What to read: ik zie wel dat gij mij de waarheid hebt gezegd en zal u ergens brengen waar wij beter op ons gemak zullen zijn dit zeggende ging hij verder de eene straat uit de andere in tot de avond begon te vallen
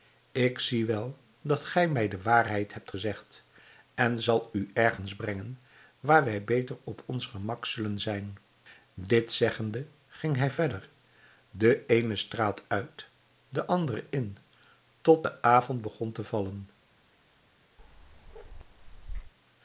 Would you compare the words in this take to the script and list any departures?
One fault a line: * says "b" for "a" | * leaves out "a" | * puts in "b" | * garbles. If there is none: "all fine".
all fine